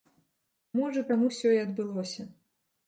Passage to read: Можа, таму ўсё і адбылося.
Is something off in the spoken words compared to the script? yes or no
no